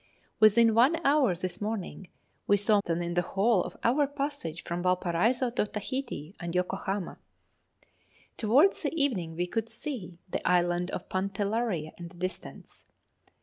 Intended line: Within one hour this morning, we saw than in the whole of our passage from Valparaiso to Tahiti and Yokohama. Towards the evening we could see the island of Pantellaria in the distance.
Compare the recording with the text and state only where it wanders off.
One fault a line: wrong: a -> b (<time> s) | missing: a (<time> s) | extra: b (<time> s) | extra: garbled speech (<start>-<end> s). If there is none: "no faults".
no faults